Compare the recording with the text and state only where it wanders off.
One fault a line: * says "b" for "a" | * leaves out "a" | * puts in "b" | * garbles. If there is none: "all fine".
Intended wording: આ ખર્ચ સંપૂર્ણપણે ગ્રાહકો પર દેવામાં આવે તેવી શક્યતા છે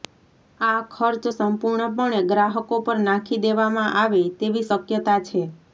* puts in "નાખી"